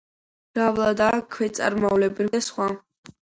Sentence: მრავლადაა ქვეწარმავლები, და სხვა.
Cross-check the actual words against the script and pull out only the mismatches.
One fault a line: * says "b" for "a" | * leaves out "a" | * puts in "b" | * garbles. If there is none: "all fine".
all fine